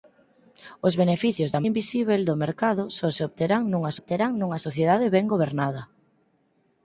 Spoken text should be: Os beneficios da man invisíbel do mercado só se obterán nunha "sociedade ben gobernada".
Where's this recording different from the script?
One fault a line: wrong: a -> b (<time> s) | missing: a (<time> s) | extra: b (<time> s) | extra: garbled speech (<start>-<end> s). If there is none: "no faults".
missing: man (1.6 s)
extra: obterán nunha (4.0 s)